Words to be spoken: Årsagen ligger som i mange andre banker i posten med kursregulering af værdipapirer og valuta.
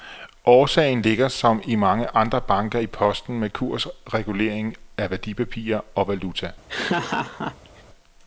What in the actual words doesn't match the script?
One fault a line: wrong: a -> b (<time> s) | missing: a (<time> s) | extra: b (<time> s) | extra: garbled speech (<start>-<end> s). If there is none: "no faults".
no faults